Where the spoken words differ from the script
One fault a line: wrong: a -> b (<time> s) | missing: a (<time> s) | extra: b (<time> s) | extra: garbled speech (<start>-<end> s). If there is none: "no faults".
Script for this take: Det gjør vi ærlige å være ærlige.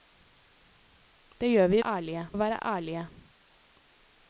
no faults